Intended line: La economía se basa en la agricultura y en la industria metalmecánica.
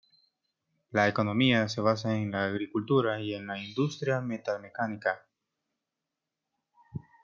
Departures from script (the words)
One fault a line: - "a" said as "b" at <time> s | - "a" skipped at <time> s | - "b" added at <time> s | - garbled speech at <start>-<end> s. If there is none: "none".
none